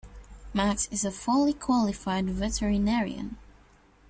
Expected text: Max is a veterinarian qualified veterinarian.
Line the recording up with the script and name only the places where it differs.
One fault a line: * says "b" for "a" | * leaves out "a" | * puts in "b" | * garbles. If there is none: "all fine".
* says "fully" for "veterinarian"